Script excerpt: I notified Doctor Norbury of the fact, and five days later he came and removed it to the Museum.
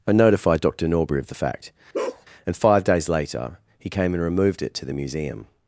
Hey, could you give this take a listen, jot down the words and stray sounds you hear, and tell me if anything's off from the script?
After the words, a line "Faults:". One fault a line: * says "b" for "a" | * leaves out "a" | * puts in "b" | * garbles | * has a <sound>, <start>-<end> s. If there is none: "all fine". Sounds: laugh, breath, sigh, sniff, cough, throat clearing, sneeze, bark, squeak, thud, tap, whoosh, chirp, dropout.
I notified Doctor Norbury of the fact, and five days later he came and removed it to the Museum.
Faults:
* has a bark, 1.9-2.3 s